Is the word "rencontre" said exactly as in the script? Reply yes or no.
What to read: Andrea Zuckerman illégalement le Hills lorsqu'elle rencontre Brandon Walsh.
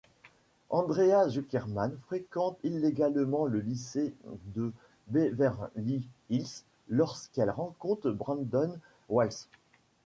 yes